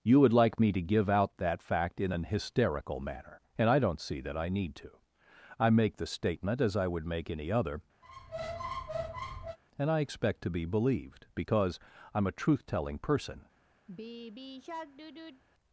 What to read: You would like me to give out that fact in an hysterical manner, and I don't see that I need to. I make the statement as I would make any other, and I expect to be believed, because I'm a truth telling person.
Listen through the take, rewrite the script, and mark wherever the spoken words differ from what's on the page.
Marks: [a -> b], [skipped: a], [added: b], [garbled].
You would like me to give out that fact in an hysterical manner, and I don't see that I need to. I make the statement as I would make any other, and I expect to be believed, because I'm a truth telling person.